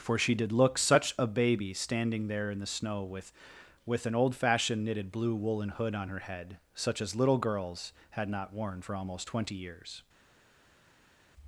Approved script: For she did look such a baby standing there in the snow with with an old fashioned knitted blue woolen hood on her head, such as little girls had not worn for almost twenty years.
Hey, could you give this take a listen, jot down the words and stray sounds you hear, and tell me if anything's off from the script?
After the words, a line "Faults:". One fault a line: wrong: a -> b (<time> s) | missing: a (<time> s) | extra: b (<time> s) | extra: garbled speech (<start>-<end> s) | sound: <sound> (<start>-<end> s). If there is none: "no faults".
For she did look such a baby standing there in the snow with with an old fashioned knitted blue woolen hood on her head, such as little girls had not worn for almost twenty years.
Faults:
no faults